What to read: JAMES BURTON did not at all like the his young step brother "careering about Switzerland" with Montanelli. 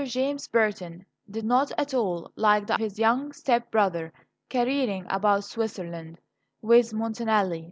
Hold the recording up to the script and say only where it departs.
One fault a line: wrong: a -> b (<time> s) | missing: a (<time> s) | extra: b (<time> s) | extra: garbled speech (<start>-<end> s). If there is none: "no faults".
no faults